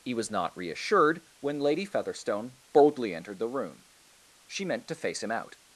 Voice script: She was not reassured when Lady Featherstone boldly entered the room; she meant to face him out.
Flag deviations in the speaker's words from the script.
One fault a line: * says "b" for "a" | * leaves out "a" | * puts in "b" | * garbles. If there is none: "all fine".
* says "He" for "She"